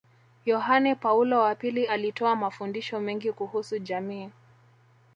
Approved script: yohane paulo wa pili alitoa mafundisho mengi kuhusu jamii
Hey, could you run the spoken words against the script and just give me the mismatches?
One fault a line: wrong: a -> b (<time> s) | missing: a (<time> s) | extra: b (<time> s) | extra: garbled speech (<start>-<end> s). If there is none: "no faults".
no faults